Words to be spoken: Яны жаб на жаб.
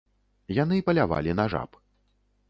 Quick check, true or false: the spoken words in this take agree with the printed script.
false